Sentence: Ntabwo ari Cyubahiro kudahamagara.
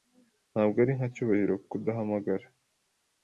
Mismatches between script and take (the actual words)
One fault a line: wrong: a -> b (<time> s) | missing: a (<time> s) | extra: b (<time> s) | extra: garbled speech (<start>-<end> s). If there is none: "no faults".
extra: nka (1.0 s)